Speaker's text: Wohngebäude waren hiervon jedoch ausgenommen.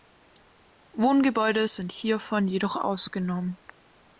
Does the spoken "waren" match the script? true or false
false